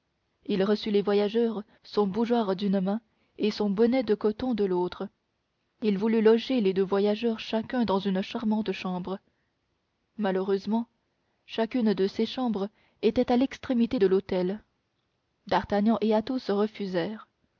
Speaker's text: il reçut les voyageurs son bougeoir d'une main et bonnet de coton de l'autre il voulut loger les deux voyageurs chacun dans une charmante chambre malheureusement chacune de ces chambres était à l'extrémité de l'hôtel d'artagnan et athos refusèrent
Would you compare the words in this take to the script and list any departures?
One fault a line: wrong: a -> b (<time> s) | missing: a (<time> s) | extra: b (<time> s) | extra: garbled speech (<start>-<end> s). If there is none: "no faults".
extra: son (3.5 s)